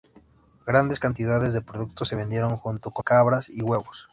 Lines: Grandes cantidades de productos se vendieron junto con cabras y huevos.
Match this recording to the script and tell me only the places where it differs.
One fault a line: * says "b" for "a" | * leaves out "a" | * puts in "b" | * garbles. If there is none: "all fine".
all fine